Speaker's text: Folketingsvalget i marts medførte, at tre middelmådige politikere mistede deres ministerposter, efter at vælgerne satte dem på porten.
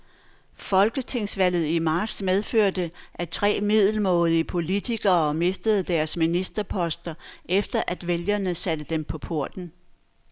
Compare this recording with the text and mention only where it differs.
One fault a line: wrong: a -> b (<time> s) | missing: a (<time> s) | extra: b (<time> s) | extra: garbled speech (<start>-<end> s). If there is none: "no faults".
no faults